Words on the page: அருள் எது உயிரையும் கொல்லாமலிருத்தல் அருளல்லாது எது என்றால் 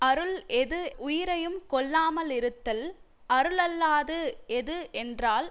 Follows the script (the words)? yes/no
yes